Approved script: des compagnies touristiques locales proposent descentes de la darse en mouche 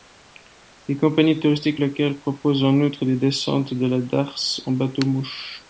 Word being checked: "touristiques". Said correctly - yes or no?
yes